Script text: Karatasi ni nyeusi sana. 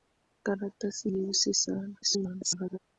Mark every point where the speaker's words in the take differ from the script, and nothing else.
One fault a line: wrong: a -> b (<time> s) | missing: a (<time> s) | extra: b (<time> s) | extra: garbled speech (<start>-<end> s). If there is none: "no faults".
missing: ni (1.1 s)
extra: garbled speech (2.0-2.8 s)